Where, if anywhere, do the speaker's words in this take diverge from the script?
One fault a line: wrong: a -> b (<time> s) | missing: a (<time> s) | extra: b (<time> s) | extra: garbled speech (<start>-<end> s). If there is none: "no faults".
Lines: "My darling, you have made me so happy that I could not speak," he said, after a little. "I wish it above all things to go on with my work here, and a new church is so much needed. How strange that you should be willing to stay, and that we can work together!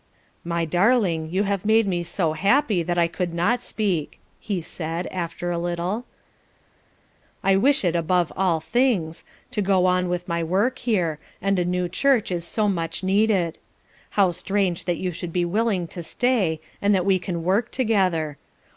no faults